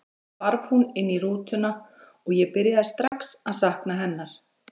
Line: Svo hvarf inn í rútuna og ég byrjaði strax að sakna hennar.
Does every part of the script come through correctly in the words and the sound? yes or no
no